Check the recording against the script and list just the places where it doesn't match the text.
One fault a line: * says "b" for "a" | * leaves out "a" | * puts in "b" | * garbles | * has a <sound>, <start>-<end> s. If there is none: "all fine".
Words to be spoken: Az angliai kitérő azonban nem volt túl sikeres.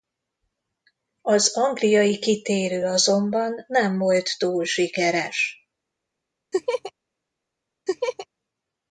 * has a laugh, 6.5-6.9 s
* has a laugh, 7.9-8.3 s